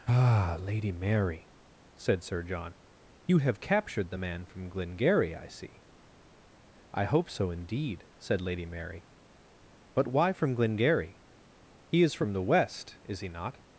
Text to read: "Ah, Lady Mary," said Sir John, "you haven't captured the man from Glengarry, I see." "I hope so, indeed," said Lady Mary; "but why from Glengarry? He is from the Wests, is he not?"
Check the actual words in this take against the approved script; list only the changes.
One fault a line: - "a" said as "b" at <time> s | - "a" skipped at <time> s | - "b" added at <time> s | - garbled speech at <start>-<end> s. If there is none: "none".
- "haven't" said as "have" at 3.4 s
- "Wests" said as "West" at 12.4 s